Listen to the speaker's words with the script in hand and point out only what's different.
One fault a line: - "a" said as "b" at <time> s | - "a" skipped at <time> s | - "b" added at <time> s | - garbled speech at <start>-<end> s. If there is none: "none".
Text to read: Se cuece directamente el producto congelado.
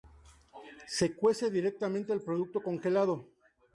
none